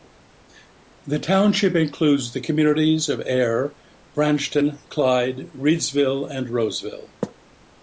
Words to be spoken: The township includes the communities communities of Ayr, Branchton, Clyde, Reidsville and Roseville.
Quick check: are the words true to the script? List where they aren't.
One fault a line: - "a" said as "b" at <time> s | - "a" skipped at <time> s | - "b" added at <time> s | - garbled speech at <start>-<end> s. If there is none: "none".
- "communities" skipped at 3.1 s